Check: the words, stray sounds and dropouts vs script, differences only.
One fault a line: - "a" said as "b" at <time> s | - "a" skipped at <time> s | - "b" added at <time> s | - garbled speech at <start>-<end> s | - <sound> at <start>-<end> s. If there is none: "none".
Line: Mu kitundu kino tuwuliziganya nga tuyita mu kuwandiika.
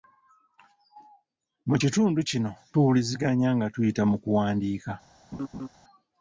- laugh at 5.3-5.7 s